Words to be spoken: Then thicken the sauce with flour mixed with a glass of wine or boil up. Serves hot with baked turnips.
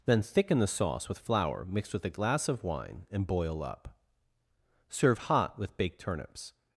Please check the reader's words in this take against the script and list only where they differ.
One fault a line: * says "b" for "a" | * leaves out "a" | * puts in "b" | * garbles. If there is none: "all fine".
* says "and" for "or"
* says "Serve" for "Serves"